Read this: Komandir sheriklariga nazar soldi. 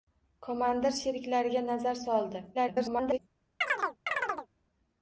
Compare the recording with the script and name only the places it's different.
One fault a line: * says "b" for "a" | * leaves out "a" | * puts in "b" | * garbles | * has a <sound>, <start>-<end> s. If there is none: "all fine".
* garbles
* has a chirp, 3.6-4.5 s